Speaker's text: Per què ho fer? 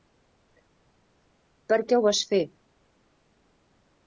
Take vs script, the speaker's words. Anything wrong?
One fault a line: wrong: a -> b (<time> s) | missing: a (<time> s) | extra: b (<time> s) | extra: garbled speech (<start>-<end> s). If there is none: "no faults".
extra: vas (2.1 s)